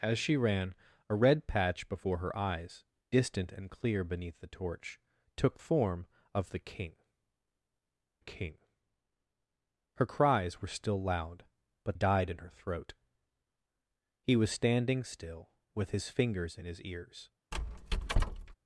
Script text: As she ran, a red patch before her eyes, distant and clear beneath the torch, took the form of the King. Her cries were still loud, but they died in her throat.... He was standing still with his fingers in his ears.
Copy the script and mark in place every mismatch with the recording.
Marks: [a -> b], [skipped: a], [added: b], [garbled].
As she ran, a red patch before her eyes, distant and clear beneath the torch, took [skipped: the] form of the King. [added: King] Her cries were still loud, but [skipped: they] died in her throat.... He was standing still with his fingers in his ears.